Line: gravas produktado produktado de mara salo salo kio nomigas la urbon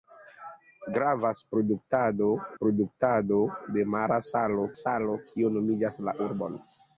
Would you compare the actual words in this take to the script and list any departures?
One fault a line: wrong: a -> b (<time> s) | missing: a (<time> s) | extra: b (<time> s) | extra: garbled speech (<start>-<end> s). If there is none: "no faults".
no faults